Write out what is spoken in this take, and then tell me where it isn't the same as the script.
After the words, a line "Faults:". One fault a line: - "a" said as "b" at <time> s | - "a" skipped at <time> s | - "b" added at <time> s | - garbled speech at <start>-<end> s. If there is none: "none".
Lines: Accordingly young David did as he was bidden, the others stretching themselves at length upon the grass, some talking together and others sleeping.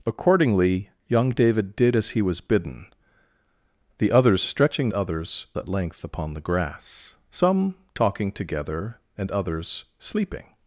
Accordingly young David did as he was bidden, the others stretching others at length upon the grass, some talking together and others sleeping.
Faults:
- "themselves" said as "others" at 4.9 s